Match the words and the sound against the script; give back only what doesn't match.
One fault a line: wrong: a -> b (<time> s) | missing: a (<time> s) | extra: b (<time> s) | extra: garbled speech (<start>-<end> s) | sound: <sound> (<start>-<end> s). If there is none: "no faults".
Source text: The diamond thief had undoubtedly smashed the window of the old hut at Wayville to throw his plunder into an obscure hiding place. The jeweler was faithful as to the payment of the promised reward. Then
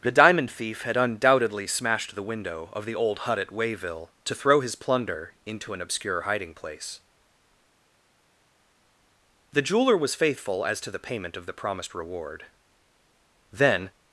no faults